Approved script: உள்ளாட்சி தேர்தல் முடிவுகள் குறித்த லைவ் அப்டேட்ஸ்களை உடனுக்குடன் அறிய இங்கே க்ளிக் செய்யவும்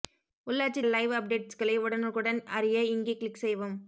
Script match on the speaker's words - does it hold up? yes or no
no